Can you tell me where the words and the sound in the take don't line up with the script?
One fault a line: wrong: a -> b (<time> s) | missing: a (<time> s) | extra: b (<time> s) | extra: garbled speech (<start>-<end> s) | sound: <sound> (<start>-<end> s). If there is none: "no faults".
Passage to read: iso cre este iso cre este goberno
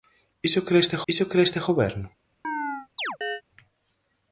sound: chirp (2.4-3.4 s)